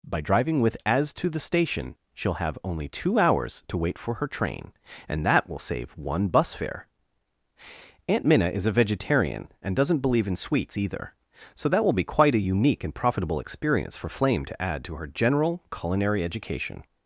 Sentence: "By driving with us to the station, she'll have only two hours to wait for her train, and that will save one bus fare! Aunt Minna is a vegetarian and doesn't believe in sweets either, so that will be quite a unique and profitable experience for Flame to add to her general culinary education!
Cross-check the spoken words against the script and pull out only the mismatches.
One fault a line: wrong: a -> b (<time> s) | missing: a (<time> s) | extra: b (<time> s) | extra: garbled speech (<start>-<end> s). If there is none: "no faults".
wrong: us -> as (0.8 s)